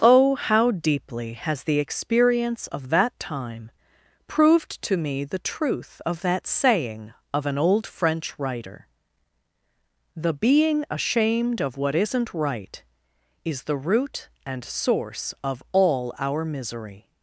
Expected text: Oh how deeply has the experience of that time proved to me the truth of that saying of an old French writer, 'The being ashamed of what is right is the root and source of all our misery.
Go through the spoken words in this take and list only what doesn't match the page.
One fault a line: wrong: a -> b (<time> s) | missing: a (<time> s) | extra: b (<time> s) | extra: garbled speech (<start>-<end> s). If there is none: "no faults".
wrong: is -> isn't (11.9 s)